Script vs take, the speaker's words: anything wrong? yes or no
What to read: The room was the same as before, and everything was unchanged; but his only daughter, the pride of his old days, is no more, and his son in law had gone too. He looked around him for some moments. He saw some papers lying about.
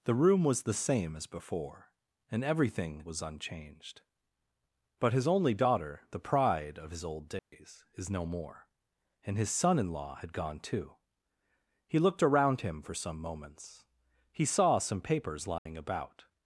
no